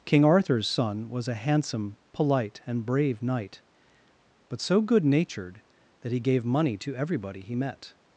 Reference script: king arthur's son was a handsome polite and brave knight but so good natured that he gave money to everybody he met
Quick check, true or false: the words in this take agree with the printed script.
true